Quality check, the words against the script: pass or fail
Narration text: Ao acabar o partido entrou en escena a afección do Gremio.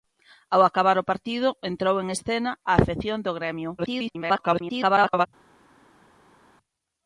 fail